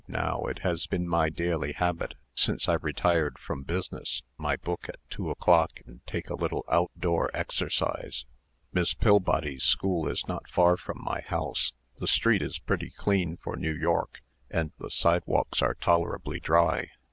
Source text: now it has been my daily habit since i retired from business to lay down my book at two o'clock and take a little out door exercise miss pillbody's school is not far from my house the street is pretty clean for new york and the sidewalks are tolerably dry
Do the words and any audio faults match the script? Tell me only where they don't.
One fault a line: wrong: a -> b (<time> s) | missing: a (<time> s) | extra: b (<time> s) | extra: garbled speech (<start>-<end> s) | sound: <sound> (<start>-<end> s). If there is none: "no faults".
missing: to lay down (4.2 s)